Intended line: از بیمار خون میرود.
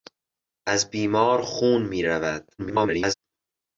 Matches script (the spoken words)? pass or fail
fail